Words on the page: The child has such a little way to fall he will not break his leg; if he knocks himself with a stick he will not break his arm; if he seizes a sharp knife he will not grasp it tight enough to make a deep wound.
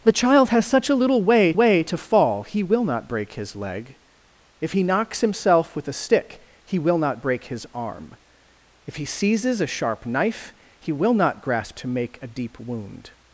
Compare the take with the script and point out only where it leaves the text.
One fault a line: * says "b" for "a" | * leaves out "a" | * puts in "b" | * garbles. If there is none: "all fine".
* puts in "way"
* leaves out "it tight enough"